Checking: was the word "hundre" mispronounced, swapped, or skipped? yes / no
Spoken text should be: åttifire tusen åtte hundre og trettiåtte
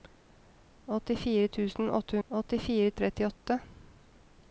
yes